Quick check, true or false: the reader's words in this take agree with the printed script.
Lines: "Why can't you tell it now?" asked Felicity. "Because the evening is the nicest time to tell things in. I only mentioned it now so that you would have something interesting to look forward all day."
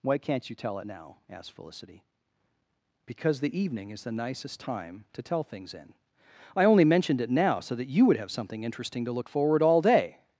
true